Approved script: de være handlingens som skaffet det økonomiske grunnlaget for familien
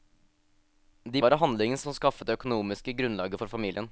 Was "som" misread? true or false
false